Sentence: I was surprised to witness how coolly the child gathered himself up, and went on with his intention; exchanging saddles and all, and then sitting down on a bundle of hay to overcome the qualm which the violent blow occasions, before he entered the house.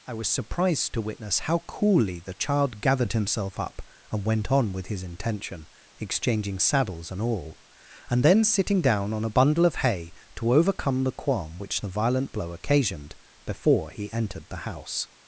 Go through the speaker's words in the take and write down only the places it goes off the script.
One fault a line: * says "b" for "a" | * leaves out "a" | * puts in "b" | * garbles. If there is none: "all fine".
* says "occasioned" for "occasions"